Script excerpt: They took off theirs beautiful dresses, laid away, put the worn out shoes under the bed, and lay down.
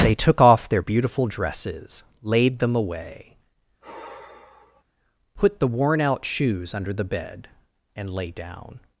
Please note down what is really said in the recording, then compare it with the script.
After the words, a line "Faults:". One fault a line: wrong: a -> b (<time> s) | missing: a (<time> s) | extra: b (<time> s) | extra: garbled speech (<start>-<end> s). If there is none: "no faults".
They took off their beautiful dresses, laid them away, put the worn out shoes under the bed, and lay down.
Faults:
wrong: theirs -> their (0.7 s)
extra: them (2.6 s)